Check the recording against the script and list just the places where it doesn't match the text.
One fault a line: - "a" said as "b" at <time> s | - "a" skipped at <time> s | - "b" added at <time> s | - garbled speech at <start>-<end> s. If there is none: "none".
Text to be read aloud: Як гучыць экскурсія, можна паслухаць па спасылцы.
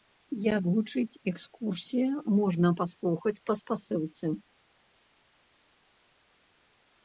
none